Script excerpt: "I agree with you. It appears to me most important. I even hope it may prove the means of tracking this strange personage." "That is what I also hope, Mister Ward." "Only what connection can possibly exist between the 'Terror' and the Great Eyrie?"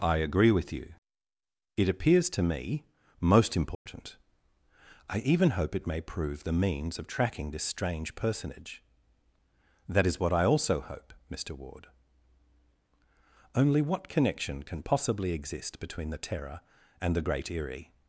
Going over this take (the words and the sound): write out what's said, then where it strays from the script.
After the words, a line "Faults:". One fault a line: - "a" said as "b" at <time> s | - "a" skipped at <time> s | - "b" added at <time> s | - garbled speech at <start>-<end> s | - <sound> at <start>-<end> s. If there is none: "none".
"I agree with you. It appears to me most important. I even hope it may prove the means of tracking this strange personage." "That is what I also hope, Mister Ward." "Only what connection can possibly exist between the 'Terror' and the Great Eyrie?"
Faults:
- dropout at 3.7-3.9 s